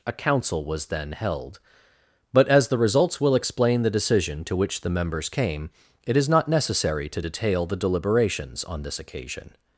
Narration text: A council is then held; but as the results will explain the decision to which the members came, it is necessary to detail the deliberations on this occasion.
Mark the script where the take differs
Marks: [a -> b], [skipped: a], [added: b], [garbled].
A council [is -> was] then held; but as the results will explain the decision to which the members came, it is [added: not] necessary to detail the deliberations on this occasion.